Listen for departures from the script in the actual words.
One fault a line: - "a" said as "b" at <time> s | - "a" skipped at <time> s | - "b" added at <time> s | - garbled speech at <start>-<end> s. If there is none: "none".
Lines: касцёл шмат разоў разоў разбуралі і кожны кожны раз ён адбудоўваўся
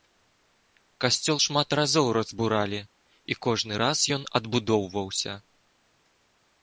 - "разоў" skipped at 2.1 s
- "кожны" skipped at 3.7 s